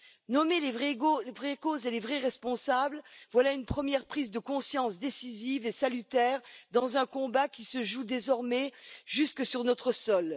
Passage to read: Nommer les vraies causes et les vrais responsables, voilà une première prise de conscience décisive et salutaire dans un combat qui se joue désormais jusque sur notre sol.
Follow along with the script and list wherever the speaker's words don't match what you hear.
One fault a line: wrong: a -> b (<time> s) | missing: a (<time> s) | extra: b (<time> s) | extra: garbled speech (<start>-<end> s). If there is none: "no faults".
no faults